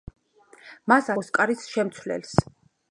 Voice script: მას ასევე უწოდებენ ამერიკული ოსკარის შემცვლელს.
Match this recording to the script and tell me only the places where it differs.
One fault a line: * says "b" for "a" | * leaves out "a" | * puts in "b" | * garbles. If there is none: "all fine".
* leaves out "ასევე უწოდებენ ამერიკული"